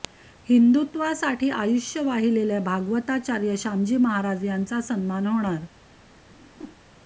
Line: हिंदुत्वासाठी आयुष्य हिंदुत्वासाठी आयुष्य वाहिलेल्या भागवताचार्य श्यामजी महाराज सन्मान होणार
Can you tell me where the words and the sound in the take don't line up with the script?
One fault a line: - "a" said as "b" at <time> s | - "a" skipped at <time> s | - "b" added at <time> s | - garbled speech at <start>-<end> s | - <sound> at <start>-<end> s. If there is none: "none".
- "हिंदुत्वासाठी आयुष्य" skipped at 2.0 s
- "यांचा" added at 4.5 s
- whoosh at 6.3-6.8 s